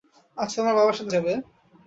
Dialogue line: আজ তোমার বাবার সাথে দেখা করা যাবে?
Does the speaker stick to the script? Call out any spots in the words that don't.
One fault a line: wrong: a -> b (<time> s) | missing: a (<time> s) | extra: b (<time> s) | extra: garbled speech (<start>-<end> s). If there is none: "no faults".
missing: দেখা করা (1.1 s)